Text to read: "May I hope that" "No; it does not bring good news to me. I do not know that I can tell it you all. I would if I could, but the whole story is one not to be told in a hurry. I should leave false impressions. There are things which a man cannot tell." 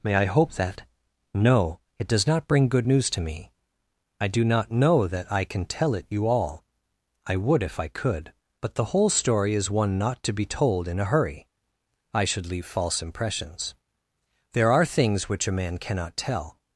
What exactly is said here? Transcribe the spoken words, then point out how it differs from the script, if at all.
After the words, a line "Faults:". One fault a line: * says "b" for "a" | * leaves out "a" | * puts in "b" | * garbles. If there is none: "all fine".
"May I hope that" "No; it does not bring good news to me. I do not know that I can tell it you all. I would if I could, but the whole story is one not to be told in a hurry. I should leave false impressions. There are things which a man cannot tell."
Faults:
all fine